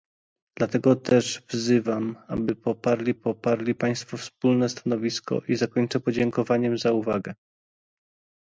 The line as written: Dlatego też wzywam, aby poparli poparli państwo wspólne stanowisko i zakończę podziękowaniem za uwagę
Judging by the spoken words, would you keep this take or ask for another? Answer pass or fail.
pass